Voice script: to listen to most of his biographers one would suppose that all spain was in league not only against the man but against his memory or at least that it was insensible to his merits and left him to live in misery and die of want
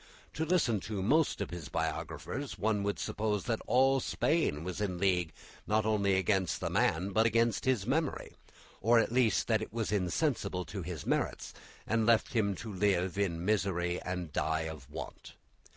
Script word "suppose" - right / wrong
right